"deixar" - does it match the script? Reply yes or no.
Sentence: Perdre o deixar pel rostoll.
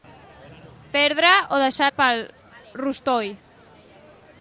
yes